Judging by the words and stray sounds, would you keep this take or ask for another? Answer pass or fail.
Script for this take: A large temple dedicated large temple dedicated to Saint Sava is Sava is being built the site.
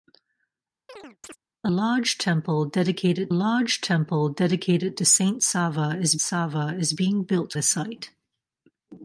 fail